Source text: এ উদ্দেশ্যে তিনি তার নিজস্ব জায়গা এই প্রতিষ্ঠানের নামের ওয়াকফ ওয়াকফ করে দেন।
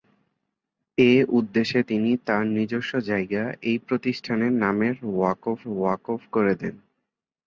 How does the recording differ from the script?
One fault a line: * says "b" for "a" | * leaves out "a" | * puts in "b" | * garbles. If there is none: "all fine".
all fine